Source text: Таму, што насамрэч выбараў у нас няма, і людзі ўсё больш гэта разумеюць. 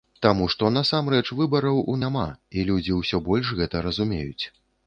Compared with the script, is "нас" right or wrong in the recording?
wrong